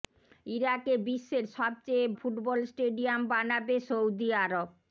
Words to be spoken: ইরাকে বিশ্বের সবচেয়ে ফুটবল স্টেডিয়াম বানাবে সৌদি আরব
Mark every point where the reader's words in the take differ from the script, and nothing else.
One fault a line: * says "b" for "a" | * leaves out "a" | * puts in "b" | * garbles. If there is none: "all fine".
all fine